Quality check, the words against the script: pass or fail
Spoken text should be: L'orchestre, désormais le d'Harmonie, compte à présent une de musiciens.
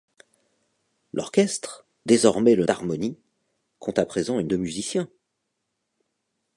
pass